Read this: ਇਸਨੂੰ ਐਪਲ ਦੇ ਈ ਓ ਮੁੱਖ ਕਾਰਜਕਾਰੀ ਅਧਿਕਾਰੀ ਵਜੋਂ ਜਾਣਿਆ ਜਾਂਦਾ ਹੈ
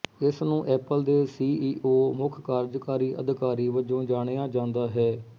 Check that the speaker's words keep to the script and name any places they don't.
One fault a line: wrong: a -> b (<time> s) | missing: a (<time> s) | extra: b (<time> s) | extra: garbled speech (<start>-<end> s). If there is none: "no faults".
extra: ਸੀ (1.3 s)